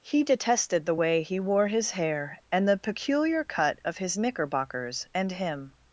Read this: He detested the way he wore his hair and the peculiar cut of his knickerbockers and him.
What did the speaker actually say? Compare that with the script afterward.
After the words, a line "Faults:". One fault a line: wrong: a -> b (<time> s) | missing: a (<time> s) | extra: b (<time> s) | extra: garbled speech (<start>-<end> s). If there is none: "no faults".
He detested the way he wore his hair and the peculiar cut of his knickerbockers and him.
Faults:
no faults